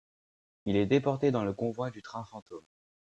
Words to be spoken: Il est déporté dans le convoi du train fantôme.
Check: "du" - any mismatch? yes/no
no